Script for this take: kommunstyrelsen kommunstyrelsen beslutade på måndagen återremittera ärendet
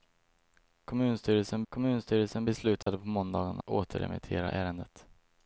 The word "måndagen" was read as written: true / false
true